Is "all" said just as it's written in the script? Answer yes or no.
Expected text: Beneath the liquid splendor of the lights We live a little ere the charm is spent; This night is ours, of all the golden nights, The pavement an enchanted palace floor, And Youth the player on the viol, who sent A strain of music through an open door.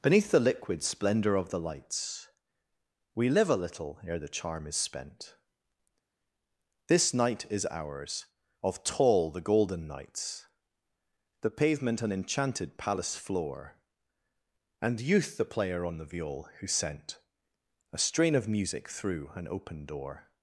no